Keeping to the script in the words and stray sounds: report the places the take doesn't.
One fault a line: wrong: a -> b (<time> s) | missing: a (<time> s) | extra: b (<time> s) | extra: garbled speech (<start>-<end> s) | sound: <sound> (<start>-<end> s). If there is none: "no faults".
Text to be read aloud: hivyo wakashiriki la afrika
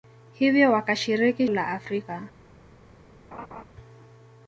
sound: laugh (3.3-3.6 s)